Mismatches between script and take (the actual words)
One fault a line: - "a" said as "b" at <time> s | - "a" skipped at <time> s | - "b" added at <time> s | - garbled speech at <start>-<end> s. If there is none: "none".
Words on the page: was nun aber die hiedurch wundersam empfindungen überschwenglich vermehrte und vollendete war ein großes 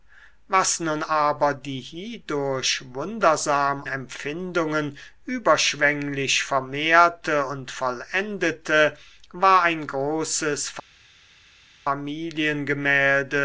none